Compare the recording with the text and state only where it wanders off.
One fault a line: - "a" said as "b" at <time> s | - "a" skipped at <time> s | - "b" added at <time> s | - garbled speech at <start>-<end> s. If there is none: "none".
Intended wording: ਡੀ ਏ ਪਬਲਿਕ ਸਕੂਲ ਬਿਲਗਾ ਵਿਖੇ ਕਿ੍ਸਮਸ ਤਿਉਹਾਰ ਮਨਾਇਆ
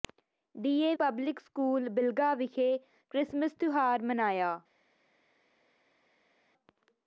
none